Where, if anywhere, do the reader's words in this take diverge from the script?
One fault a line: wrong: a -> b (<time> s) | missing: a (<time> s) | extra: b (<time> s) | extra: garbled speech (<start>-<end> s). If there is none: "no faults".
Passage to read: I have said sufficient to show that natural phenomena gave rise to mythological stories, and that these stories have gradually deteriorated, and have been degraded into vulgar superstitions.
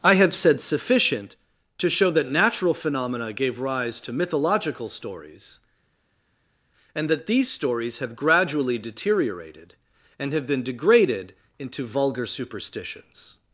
no faults